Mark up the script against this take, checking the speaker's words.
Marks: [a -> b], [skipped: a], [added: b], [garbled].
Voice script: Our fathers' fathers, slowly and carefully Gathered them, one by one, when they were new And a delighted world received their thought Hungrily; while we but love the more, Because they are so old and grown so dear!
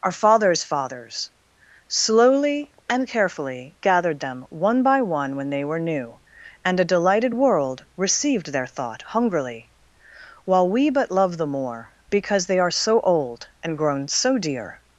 Our fathers' fathers, slowly and carefully Gathered them, one by one, when they were new And a delighted world received their thought Hungrily; while we but love the more, Because they are so old and grown so dear!